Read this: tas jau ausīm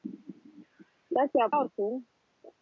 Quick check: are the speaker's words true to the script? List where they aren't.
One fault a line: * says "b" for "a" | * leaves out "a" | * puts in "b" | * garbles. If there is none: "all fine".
all fine